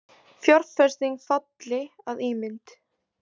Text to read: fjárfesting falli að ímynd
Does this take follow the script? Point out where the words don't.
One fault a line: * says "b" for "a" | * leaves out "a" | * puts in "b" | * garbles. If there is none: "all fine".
all fine